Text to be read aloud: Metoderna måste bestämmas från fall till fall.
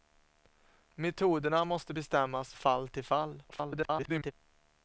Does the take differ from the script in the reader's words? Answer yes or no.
yes